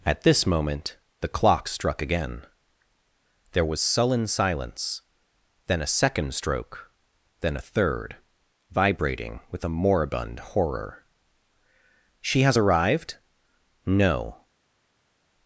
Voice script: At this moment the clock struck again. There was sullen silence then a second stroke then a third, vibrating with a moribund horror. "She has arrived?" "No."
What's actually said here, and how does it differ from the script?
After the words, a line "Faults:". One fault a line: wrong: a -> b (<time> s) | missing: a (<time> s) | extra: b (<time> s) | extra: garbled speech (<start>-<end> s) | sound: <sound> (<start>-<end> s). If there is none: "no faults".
At this moment the clock struck again. There was sullen silence then a second stroke then a third, vibrating with a moribund horror. "She has arrived?" "No."
Faults:
no faults